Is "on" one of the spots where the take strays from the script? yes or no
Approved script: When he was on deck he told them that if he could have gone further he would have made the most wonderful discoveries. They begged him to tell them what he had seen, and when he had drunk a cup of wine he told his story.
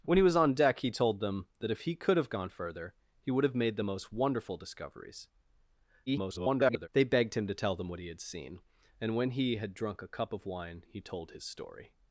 no